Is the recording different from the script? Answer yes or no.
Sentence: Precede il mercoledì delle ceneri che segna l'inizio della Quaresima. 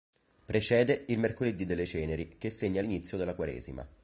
no